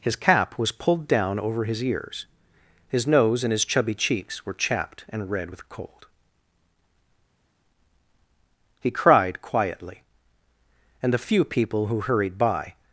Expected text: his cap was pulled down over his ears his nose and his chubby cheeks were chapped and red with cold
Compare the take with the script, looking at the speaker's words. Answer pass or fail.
fail